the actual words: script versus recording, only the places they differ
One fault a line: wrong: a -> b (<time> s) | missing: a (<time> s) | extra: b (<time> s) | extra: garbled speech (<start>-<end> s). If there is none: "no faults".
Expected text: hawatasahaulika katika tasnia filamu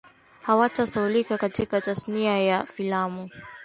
extra: ya (2.4 s)